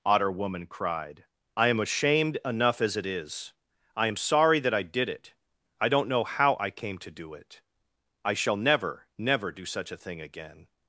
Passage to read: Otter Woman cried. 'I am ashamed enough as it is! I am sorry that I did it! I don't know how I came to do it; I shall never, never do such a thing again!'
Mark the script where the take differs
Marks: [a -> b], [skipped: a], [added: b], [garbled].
Otter Woman cried. 'I am ashamed enough as it is! I am sorry that I did it! I don't know how I came to do it; I shall never, never do such a thing again!'